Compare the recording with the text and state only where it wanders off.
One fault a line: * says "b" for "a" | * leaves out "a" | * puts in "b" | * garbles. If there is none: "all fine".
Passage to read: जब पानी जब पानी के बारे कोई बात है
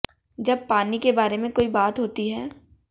* leaves out "जब पानी"
* puts in "में"
* puts in "होती"